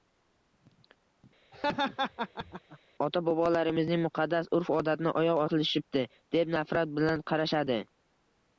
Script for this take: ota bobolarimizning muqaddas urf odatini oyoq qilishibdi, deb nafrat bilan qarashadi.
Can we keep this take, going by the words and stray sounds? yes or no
no